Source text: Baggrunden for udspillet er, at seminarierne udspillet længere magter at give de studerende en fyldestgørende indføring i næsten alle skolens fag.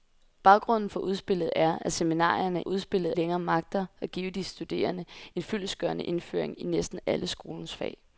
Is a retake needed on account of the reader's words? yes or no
no